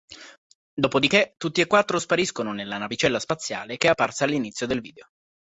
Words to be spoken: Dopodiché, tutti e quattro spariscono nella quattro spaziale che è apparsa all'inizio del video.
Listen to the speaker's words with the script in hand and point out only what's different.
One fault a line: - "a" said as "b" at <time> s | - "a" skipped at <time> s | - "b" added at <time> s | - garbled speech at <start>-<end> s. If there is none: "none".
- "quattro" said as "navicella" at 2.8 s